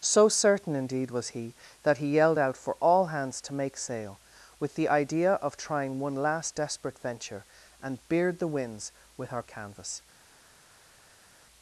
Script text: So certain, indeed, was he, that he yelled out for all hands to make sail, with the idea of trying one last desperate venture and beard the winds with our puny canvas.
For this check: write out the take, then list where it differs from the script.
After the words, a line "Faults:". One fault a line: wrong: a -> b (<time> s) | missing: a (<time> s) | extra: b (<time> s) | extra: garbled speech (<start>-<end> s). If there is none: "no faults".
So certain, indeed, was he, that he yelled out for all hands to make sail, with the idea of trying one last desperate venture and beard the winds with our canvas.
Faults:
missing: puny (9.4 s)